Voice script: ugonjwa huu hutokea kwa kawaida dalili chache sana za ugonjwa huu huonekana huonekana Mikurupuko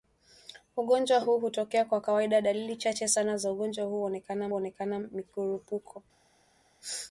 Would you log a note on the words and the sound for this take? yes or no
no